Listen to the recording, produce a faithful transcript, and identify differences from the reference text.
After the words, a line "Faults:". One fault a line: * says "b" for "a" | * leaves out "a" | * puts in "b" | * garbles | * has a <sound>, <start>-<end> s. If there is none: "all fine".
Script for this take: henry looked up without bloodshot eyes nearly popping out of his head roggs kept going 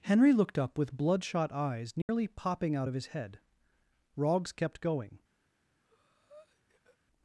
henry looked up with bloodshot eyes nearly popping out of his head roggs kept going
Faults:
* says "with" for "without"
* has a dropout, 2.0-2.1 s
* has a breath, 5.8-7.0 s